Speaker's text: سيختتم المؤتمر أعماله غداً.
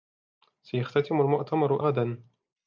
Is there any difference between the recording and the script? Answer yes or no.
yes